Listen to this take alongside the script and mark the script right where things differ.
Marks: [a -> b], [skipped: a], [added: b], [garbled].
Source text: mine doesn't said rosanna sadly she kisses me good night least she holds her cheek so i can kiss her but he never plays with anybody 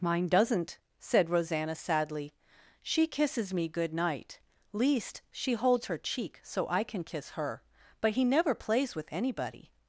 mine doesn't said rosanna sadly she kisses me good night least she holds her cheek so i can kiss her but he never plays with anybody